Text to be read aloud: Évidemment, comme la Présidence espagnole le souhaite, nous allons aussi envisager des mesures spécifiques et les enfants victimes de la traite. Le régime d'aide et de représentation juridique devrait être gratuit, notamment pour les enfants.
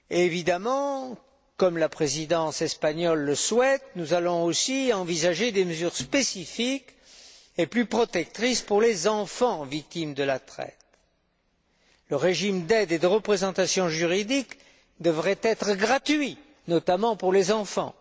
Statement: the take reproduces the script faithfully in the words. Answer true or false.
false